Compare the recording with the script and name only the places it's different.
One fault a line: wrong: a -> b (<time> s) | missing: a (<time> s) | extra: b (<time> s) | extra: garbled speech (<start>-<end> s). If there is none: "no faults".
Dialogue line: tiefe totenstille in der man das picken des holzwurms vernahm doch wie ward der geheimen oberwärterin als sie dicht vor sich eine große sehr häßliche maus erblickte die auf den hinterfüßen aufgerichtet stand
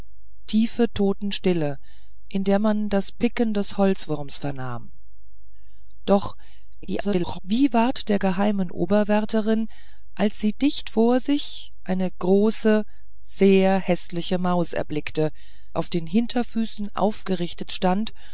extra: garbled speech (6.8-7.4 s)
missing: die (15.3 s)